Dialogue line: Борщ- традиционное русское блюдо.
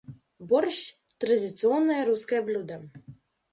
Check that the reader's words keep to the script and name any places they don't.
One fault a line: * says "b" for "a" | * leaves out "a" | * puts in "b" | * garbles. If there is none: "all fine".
all fine